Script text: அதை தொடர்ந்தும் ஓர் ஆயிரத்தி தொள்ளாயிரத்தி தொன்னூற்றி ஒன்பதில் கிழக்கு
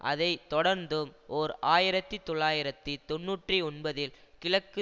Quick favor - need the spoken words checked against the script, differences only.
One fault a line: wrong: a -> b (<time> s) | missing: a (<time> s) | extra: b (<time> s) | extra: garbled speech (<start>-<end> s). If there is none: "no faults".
no faults